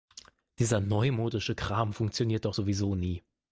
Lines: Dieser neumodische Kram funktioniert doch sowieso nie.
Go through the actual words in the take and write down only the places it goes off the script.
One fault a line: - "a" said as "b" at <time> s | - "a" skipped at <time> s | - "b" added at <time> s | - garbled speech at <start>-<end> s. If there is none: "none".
none